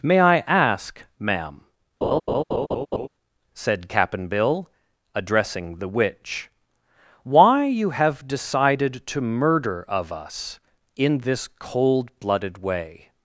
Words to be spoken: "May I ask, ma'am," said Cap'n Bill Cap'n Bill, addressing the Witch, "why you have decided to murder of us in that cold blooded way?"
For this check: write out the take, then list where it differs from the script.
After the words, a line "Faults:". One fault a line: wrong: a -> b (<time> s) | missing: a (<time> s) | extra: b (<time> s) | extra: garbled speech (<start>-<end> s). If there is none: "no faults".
"May I ask, ma'am," said Cap'n Bill, addressing the Witch, "why you have decided to murder of us in this cold blooded way?"
Faults:
missing: Cap'n Bill (4.7 s)
wrong: that -> this (11.2 s)